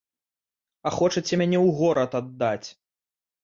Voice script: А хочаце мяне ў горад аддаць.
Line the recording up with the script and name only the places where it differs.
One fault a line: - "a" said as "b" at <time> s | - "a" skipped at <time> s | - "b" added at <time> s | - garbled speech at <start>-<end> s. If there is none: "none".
none